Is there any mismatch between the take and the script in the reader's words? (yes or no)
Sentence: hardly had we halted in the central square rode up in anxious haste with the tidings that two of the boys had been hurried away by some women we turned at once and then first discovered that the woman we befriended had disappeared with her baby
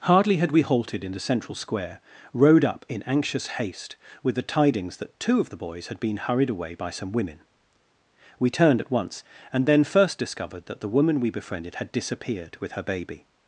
no